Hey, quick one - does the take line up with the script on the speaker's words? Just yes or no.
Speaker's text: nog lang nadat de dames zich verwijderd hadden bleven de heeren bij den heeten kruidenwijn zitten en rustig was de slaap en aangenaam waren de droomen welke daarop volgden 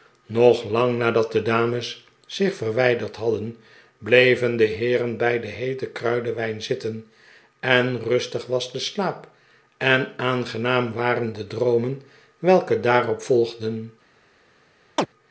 yes